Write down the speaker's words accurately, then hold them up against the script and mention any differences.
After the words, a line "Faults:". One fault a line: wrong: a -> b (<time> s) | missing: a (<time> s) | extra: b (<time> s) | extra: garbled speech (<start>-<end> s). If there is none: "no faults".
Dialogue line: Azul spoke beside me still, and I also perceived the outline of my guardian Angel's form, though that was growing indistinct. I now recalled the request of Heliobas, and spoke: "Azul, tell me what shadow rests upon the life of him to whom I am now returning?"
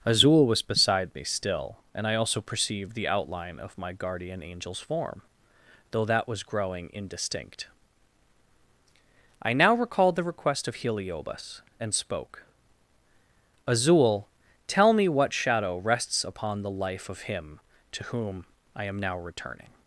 Azul was beside me still, and I also perceived the outline of my guardian Angel's form, though that was growing indistinct. I now recalled the request of Heliobas, and spoke: "Azul, tell me what shadow rests upon the life of him to whom I am now returning?"
Faults:
wrong: spoke -> was (0.5 s)